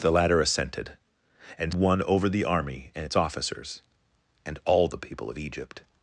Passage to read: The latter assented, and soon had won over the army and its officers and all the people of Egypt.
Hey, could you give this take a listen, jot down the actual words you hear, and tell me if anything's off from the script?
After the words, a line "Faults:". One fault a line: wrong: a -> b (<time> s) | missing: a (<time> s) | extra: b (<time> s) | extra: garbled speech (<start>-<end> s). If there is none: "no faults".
The latter assented, and won over the army and its officers and all the people of Egypt.
Faults:
missing: soon had (1.8 s)